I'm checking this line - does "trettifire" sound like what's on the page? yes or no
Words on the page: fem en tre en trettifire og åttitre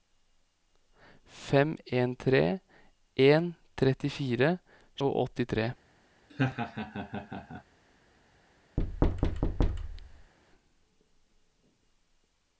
yes